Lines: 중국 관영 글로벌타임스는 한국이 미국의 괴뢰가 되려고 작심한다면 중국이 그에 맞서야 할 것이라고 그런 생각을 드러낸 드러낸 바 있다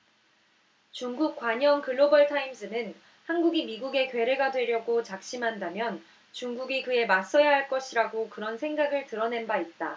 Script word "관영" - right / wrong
right